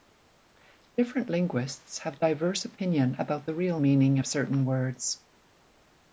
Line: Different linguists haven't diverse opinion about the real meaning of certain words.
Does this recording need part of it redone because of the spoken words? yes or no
yes